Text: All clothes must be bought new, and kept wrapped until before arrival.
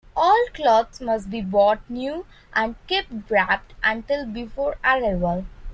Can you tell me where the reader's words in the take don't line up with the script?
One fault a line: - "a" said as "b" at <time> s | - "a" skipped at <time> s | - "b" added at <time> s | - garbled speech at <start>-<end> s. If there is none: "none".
none